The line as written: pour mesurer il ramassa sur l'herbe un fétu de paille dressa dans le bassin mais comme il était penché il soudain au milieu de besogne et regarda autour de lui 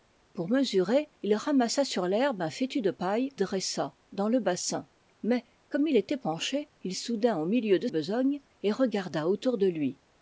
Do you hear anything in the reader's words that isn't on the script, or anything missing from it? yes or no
no